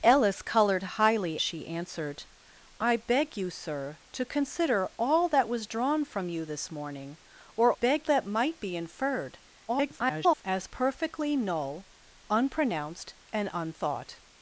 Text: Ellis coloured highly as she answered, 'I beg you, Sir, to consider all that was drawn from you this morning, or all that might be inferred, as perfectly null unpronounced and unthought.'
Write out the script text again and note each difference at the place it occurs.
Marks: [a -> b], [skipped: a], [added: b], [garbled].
Ellis coloured highly [skipped: as] she answered, 'I beg you, Sir, to consider all that was drawn from you this morning, or [all -> beg] that might be inferred, [garbled] as perfectly null unpronounced and unthought.'